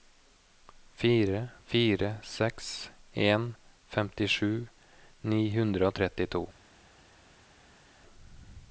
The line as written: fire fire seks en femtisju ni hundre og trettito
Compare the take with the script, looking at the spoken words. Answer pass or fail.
pass